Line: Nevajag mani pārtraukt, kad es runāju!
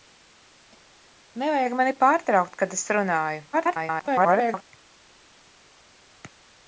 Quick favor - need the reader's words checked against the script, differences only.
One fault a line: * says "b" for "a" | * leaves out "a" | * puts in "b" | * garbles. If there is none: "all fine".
* garbles